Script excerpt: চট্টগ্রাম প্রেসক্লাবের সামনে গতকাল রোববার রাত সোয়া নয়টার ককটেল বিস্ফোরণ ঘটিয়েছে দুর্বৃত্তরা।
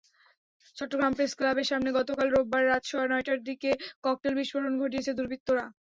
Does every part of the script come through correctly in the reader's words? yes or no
no